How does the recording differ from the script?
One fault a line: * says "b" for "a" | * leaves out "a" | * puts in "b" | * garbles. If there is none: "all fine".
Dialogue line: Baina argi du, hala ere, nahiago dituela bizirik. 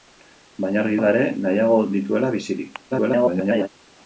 * leaves out "du"
* garbles